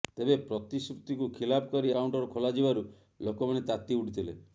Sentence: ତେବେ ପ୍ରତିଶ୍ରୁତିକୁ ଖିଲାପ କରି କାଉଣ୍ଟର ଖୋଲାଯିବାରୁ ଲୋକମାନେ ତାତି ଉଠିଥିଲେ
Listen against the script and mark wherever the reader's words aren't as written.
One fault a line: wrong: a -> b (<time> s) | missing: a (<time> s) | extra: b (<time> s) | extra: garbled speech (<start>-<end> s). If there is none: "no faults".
no faults